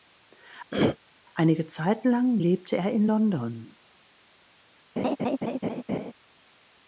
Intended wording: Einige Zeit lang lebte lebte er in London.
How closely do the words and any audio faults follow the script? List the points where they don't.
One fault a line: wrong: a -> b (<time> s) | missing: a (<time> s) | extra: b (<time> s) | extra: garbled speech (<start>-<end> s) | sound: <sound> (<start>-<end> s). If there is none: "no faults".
sound: throat clearing (0.7-1.0 s)
missing: lebte (2.8 s)
sound: laugh (5.0-6.1 s)